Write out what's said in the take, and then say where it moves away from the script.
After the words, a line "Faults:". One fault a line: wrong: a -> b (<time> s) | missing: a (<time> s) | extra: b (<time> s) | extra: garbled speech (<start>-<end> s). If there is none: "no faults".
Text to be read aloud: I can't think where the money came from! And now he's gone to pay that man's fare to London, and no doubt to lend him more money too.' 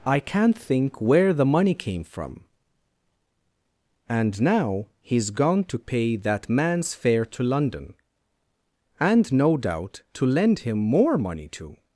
I can't think where the money came from! And now he's gone to pay that man's fare to London, and no doubt to lend him more money too.'
Faults:
no faults